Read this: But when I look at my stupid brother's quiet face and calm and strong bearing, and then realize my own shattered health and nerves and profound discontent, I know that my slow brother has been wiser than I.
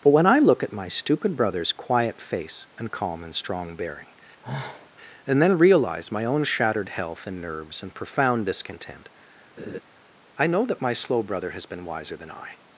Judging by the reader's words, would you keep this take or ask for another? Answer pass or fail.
pass